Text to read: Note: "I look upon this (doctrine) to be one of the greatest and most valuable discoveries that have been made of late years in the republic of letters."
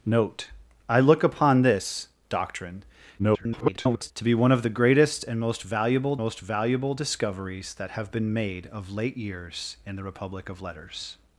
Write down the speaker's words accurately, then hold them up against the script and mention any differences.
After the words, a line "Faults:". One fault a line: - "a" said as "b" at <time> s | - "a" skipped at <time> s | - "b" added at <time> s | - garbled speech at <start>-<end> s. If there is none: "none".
Note: "I look upon this (doctrine) [garbled] to be one of the greatest and most valuable most valuable discoveries that have been made of late years in the republic of letters."
Faults:
- garbled speech at 3.2-4.1 s
- "most valuable" added at 6.2 s